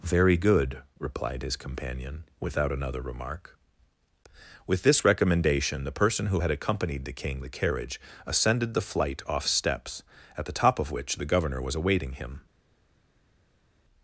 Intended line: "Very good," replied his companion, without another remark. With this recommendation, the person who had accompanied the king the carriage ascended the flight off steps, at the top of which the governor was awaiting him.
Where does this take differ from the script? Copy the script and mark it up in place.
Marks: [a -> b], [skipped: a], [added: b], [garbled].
"Very good," replied his companion, without another remark. With this recommendation, the person who had accompanied the king the carriage ascended the flight off steps, at the top of which the governor was awaiting him.